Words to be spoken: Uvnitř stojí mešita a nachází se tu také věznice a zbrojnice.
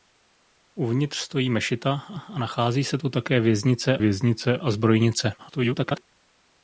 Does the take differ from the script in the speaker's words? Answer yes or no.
yes